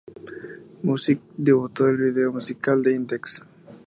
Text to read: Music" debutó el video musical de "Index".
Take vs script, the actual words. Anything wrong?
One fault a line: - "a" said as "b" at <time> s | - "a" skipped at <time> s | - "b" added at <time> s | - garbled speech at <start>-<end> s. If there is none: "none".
none